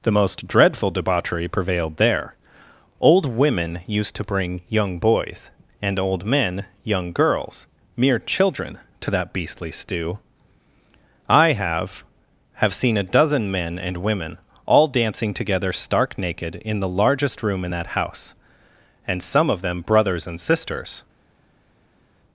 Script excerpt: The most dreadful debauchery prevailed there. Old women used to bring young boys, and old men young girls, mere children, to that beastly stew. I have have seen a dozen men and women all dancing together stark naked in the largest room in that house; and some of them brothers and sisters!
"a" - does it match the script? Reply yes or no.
yes